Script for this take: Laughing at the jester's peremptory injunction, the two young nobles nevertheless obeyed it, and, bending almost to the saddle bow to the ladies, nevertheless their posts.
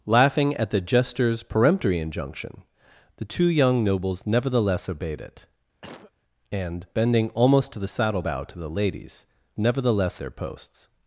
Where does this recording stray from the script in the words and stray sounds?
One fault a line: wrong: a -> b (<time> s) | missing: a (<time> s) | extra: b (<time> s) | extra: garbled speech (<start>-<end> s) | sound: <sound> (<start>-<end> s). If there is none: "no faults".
sound: cough (5.8-6.1 s)